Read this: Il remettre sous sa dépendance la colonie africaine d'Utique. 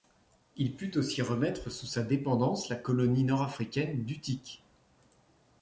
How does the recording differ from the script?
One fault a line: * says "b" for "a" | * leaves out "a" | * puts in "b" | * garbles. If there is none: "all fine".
* puts in "put aussi"
* puts in "nord"